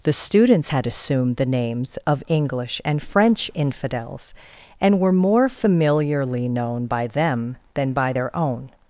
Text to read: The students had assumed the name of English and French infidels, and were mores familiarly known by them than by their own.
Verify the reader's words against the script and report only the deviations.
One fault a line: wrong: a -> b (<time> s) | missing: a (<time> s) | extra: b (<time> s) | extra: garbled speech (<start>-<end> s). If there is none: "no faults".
wrong: name -> names (1.6 s)
wrong: mores -> more (5.1 s)